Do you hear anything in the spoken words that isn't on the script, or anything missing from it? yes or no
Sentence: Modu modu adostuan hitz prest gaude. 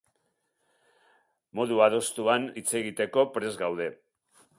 yes